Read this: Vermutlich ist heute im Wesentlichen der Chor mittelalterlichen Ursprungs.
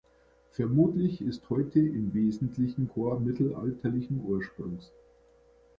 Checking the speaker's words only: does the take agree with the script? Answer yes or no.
no